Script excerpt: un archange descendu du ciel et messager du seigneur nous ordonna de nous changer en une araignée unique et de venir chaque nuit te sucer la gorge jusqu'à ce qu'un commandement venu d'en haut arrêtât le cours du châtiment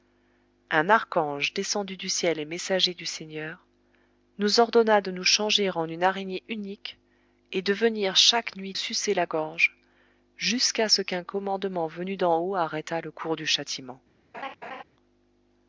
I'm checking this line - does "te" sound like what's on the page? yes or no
no